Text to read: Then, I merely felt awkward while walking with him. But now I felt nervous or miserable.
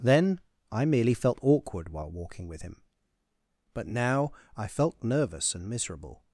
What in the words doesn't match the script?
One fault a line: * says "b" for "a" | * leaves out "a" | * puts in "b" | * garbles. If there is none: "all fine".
* says "and" for "or"